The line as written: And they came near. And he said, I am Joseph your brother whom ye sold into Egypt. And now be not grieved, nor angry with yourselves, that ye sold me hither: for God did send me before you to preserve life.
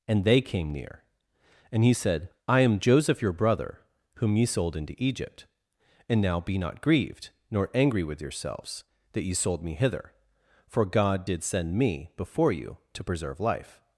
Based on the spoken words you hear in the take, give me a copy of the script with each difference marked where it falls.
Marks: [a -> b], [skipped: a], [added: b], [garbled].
And they came near. And he said, I am Joseph your brother whom ye sold into Egypt. And now be not grieved, nor angry with yourselves, that ye sold me hither: for God did send me before you to preserve life.